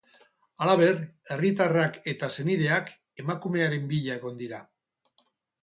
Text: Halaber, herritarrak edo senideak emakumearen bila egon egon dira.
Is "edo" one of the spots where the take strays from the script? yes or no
yes